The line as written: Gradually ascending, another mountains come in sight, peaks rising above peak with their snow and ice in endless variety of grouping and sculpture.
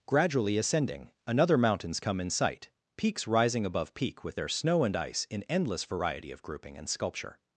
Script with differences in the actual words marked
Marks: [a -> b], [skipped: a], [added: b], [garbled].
Gradually ascending, another mountains come in sight, peaks rising above peak with their snow and ice in endless variety of grouping and sculpture.